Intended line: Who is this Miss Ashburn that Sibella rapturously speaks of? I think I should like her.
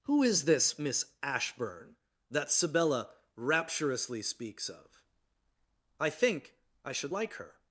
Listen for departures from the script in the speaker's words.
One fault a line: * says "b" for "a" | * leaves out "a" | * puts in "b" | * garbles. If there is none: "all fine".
all fine